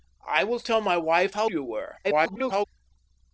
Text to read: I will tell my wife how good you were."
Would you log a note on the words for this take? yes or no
yes